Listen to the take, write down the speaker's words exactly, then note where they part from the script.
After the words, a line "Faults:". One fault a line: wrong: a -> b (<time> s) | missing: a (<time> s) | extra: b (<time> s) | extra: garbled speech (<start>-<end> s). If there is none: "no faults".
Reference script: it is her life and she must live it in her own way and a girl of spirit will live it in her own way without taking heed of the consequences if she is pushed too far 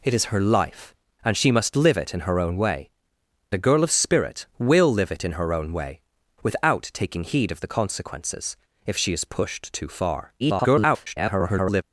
it is her life and she must live it in her own way a girl of spirit will live it in her own way without taking heed of the consequences if she is pushed too far [garbled]
Faults:
missing: and (2.9 s)
extra: garbled speech (10.4-11.8 s)